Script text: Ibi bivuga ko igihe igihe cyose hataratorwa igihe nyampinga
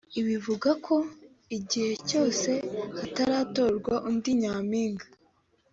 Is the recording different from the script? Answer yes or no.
yes